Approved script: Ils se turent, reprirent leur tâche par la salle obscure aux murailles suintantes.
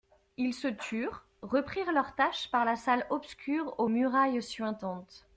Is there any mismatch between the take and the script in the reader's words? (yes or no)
no